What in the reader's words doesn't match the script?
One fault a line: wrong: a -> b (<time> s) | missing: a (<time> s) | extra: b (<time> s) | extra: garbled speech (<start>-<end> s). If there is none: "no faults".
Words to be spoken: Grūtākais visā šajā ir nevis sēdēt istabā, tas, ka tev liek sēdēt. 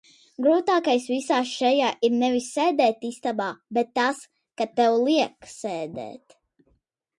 extra: bet (3.8 s)